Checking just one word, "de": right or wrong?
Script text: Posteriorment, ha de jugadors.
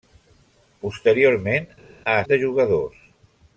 right